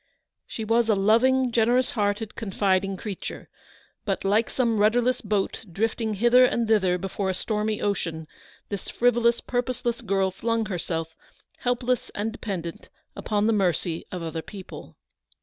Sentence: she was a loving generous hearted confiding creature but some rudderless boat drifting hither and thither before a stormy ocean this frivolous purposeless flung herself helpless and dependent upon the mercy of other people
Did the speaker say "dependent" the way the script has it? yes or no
yes